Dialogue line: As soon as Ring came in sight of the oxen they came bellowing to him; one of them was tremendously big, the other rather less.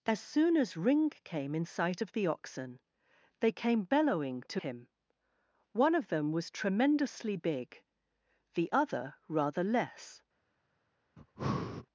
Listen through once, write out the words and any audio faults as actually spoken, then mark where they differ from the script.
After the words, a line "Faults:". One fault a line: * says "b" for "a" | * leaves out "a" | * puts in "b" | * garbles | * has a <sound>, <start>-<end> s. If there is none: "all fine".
As soon as Ring came in sight of the oxen they came bellowing to him; one of them was tremendously big, the other rather less.
Faults:
* has a breath, 11.2-11.9 s